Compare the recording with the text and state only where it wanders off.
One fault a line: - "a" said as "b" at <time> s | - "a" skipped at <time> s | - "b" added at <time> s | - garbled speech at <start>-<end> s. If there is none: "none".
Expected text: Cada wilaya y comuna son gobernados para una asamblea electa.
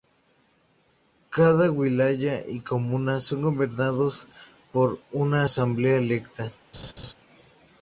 - "para" said as "por" at 4.7 s